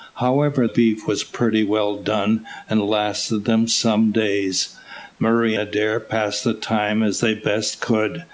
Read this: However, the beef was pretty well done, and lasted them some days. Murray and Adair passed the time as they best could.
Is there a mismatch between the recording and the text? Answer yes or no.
yes